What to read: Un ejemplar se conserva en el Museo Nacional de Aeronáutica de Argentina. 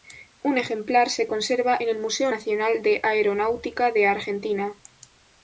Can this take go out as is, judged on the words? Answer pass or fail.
pass